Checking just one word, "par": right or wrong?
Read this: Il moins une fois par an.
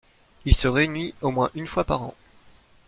right